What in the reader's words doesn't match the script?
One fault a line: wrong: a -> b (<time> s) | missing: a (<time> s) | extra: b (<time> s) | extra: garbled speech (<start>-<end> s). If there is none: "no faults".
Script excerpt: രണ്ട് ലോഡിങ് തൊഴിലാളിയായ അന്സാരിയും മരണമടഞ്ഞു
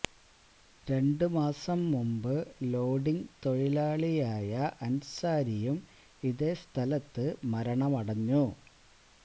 extra: മാസം മുമ്പ് (1.3 s)
extra: ഇതേ സ്ഥലത്ത് (6.2 s)